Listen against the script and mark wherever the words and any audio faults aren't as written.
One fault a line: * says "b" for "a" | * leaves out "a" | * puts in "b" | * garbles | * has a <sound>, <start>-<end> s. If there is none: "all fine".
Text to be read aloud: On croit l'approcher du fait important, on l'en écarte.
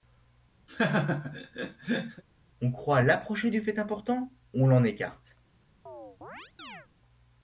* has a laugh, 0.7-2.2 s
* has a chirp, 5.9-6.9 s